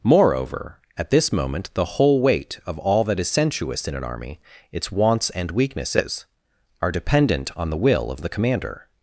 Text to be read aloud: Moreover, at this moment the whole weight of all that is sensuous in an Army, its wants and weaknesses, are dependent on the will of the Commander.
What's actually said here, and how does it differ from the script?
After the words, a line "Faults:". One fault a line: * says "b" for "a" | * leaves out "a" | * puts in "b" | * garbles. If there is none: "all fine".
Moreover, at this moment the whole weight of all that is sensuous in an Army, its wants and weaknesses, are dependent on the will of the Commander.
Faults:
all fine